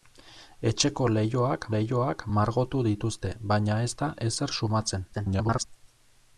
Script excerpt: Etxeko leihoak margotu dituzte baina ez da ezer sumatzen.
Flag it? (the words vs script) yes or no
yes